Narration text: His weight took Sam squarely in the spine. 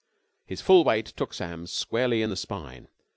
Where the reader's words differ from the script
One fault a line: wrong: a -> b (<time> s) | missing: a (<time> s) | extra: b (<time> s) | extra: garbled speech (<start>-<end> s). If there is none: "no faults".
extra: full (0.6 s)